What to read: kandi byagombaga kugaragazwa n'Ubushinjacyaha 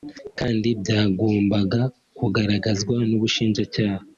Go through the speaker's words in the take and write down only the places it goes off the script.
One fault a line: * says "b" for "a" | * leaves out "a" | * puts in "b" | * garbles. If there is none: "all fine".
all fine